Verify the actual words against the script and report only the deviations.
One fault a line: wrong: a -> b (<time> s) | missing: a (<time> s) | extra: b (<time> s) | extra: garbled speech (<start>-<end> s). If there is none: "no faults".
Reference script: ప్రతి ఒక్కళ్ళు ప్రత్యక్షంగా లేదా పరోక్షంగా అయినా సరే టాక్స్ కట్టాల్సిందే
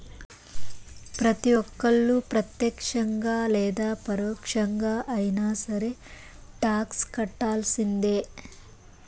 no faults